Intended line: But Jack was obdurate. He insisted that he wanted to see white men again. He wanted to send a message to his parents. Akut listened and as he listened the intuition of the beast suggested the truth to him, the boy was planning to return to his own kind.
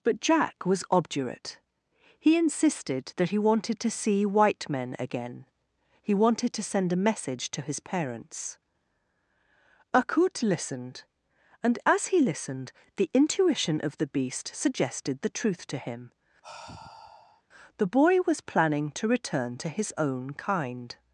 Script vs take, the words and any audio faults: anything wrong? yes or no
yes